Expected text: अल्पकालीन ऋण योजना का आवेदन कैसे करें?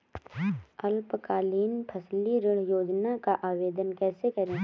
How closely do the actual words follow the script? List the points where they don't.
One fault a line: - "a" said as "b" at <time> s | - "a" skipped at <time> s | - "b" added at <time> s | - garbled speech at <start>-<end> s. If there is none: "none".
- "फसली" added at 1.9 s